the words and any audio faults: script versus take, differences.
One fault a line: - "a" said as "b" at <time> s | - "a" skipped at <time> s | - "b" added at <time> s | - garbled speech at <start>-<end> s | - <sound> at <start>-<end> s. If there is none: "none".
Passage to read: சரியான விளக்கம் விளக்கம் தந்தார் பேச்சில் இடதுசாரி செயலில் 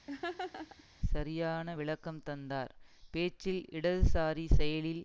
- laugh at 0.1-0.8 s
- "விளக்கம்" skipped at 2.2 s